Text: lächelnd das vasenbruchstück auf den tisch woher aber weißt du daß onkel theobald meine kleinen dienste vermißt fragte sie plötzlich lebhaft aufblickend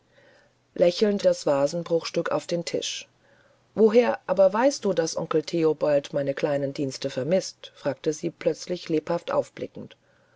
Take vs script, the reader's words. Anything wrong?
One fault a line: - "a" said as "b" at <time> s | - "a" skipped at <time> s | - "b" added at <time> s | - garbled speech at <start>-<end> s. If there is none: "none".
none